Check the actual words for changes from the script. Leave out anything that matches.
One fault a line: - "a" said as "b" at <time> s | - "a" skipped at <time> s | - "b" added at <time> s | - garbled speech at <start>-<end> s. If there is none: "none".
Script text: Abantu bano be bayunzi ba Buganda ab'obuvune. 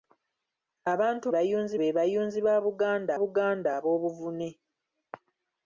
- "bano" said as "bayunzi" at 1.3 s
- "Buganda" added at 3.2 s